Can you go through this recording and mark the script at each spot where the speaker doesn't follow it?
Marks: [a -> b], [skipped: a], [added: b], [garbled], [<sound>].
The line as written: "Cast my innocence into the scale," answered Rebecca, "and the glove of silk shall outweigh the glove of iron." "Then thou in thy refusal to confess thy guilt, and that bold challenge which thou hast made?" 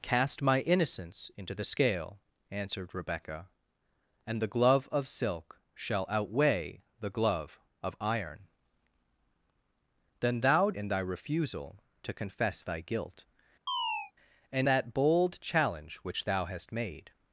"Cast my innocence into the scale," answered Rebecca, "and the glove of silk shall outweigh the glove of iron." "Then thou in thy refusal to confess thy guilt, [chirp] and that bold challenge which thou hast made?"